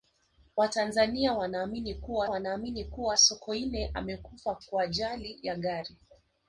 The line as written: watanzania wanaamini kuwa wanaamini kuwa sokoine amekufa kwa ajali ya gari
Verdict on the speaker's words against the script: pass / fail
pass